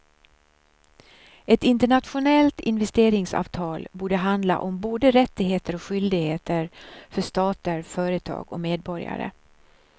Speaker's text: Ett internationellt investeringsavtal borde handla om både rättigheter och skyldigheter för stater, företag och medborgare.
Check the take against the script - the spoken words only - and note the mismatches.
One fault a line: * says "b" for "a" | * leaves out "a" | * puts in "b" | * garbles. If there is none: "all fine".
all fine